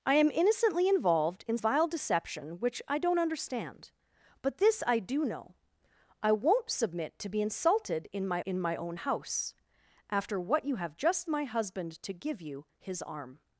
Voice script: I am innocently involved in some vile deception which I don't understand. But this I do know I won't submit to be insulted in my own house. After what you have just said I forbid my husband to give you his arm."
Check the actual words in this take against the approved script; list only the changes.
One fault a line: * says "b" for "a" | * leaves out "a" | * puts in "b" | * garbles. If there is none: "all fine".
* leaves out "some"
* puts in "in my"
* leaves out "said I forbid"